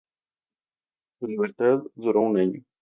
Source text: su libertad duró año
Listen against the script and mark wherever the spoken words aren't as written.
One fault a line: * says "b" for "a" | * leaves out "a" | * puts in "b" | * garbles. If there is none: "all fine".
* puts in "un"